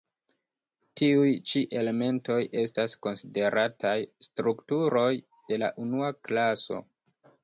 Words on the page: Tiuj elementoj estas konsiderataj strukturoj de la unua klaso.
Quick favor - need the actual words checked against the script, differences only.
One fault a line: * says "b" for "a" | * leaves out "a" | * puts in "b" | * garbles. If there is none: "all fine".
* puts in "ĉi"